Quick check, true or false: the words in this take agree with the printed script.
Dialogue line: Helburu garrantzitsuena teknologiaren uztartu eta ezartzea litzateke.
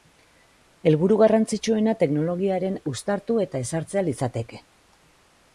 true